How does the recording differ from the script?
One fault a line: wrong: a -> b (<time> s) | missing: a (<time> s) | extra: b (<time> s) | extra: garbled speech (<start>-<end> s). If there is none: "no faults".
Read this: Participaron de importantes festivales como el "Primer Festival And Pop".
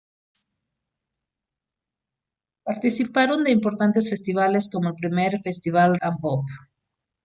no faults